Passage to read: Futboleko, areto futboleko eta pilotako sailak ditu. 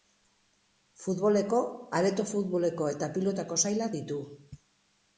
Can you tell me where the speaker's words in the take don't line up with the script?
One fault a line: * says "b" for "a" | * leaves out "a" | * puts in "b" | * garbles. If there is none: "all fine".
all fine